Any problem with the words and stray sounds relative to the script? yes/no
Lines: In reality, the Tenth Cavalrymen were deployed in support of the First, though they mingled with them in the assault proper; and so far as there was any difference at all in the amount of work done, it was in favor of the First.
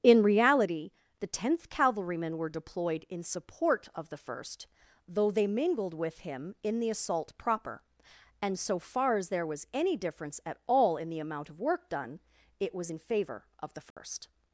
yes